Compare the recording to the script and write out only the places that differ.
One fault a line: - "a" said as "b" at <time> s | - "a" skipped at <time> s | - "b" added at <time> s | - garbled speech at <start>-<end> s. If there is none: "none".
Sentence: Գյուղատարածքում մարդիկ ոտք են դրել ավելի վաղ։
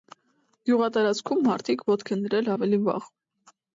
none